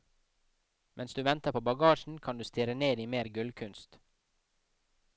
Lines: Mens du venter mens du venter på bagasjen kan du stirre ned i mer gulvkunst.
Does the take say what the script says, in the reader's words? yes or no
no